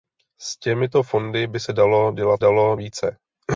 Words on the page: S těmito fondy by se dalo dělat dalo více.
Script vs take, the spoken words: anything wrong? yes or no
no